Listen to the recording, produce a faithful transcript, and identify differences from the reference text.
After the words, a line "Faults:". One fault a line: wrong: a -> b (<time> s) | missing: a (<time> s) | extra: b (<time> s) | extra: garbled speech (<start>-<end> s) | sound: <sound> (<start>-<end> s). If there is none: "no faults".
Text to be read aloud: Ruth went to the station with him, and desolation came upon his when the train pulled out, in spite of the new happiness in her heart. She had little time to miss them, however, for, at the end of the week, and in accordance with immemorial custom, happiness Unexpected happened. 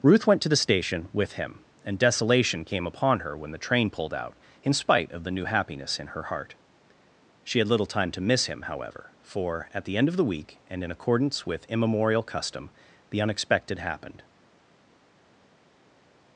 Ruth went to the station with him, and desolation came upon her when the train pulled out, in spite of the new happiness in her heart. She had little time to miss him, however, for, at the end of the week, and in accordance with immemorial custom, the Unexpected happened.
Faults:
wrong: his -> her (3.2 s)
wrong: them -> him (8.5 s)
wrong: happiness -> the (13.1 s)